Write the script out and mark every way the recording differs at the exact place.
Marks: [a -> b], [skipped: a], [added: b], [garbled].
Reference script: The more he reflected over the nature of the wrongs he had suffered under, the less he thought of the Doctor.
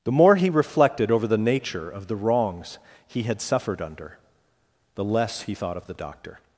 The more he reflected over the nature of the wrongs he had suffered under, the less he thought of the Doctor.